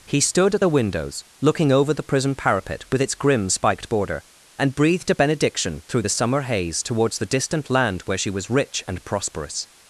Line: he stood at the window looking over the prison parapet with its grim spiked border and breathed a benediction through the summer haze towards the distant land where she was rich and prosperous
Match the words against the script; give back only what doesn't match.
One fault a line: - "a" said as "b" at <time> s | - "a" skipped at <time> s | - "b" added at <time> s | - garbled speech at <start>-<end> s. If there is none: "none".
- "window" said as "windows" at 0.7 s